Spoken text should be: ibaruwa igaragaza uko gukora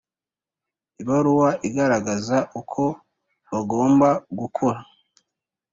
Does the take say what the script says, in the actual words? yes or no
no